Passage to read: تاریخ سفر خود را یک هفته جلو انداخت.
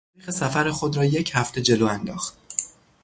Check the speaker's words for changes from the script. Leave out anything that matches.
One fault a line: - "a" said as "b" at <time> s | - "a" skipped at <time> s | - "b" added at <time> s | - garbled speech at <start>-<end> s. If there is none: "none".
none